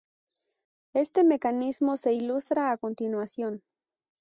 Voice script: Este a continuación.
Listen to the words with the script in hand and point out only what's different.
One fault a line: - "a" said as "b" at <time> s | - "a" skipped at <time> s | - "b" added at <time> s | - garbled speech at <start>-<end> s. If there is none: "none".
- "mecanismo se ilustra" added at 1.2 s